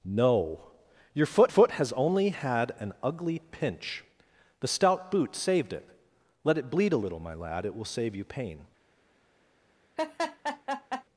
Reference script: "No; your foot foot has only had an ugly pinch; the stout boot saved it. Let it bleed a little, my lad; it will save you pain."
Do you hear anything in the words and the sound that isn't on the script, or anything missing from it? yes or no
yes